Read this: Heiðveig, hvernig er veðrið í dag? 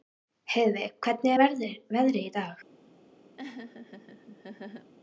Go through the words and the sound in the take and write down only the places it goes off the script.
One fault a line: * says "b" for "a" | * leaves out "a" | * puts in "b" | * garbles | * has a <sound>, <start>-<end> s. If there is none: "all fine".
* has a laugh, 3.4-4.9 s